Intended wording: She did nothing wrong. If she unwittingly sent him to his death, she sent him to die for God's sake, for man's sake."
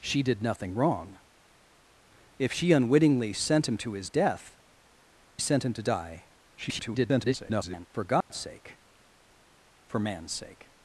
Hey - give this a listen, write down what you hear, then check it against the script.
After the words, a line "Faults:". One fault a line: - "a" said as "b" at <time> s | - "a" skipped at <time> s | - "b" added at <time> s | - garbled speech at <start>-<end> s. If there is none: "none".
She did nothing wrong. If she unwittingly sent him to his death, sent him to die [garbled] for God's sake, for man's sake."
Faults:
- "she" skipped at 4.6 s
- garbled speech at 6.6-7.9 s